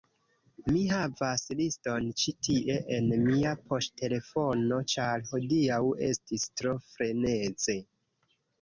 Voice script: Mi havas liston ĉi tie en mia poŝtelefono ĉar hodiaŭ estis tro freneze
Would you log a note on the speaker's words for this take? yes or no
no